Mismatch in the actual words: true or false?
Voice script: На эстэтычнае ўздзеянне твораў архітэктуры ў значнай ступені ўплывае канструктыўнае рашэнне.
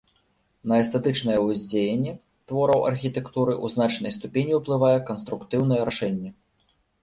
false